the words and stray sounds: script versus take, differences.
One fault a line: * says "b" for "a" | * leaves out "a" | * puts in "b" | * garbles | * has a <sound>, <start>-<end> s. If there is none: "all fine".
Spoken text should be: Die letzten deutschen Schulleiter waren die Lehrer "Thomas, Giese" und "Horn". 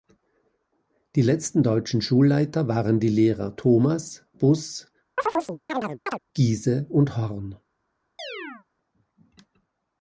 * puts in "Buss"
* has a chirp, 5.2-6.2 s
* has a chirp, 8.2-8.7 s